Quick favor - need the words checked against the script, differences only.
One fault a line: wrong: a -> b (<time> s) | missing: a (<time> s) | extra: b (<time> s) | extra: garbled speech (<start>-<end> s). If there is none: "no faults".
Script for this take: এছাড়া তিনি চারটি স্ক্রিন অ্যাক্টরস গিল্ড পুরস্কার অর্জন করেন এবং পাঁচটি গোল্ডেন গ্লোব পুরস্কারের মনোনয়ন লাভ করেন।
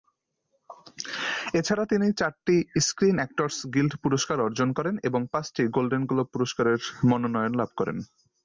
no faults